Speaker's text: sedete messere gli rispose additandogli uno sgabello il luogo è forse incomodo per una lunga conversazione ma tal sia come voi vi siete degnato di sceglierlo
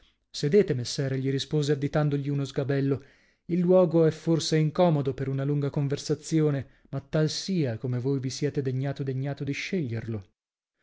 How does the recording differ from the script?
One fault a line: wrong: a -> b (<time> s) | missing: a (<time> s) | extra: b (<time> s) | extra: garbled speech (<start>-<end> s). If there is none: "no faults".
extra: degnato (9.0 s)